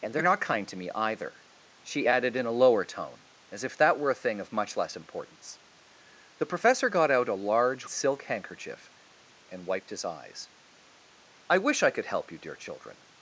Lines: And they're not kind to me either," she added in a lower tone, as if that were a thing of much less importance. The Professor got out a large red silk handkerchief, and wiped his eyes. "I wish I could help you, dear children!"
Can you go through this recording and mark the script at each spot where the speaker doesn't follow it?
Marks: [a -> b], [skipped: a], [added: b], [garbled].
And they're not kind to me either," she added in a lower tone, as if that were a thing of much less importance. The Professor got out a large [skipped: red] silk handkerchief, and wiped his eyes. "I wish I could help you, dear children!"